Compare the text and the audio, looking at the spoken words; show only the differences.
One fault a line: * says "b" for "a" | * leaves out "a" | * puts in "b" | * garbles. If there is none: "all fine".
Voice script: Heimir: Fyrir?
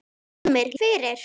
all fine